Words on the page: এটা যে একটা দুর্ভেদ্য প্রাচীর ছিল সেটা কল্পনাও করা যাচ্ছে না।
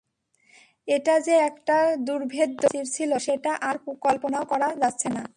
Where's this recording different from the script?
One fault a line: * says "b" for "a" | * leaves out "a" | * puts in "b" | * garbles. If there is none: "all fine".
* puts in "আর"